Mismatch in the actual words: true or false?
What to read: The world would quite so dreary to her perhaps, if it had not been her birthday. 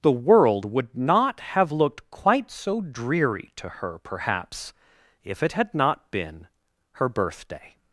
true